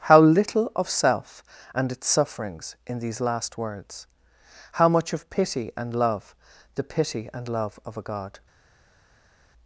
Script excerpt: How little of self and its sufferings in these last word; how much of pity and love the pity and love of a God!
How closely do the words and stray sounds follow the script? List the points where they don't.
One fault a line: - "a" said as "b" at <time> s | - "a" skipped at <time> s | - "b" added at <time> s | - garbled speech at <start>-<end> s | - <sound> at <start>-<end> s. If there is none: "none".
- "word" said as "words" at 3.6 s